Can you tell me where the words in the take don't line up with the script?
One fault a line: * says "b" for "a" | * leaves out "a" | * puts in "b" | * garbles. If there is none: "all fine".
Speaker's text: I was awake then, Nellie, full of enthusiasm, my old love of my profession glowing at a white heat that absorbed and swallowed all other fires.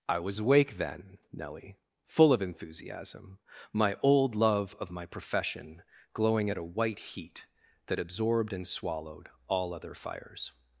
all fine